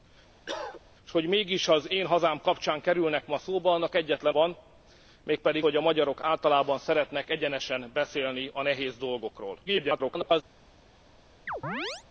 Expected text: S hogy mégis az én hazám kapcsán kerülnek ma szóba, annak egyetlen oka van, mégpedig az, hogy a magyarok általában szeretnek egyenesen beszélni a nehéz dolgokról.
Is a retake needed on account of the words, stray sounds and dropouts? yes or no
yes